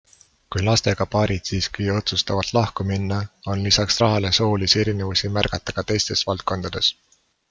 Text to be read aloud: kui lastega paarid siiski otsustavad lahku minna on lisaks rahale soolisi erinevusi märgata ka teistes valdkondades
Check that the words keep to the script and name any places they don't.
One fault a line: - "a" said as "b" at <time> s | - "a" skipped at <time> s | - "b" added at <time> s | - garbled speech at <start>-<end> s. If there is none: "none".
none